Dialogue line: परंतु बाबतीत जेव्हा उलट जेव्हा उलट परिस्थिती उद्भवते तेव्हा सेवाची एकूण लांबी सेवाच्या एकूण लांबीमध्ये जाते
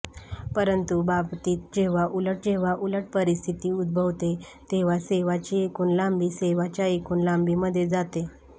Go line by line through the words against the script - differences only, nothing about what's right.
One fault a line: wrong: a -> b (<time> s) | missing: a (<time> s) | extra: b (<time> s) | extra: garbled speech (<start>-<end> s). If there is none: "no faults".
no faults